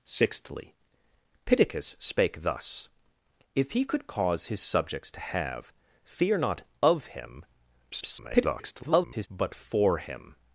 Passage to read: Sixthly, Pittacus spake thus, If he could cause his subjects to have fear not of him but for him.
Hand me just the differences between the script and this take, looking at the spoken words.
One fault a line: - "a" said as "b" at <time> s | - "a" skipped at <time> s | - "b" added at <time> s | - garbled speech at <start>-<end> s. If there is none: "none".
- garbled speech at 7.9-9.3 s